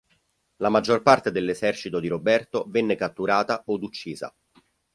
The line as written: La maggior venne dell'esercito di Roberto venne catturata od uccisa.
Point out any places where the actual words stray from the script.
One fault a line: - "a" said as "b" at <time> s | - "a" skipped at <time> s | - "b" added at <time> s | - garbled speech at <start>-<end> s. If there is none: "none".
- "venne" said as "parte" at 1.0 s